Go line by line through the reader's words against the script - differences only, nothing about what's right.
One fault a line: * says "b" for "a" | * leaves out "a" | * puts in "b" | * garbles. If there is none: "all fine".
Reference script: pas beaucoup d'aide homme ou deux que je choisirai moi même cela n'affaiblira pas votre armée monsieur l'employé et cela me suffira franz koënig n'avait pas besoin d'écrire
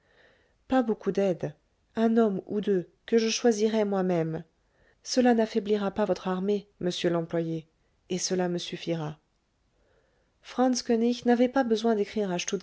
* puts in "un"